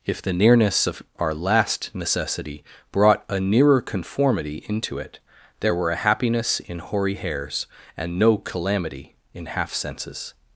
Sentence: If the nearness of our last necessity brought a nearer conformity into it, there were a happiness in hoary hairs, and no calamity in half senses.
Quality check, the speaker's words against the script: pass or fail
pass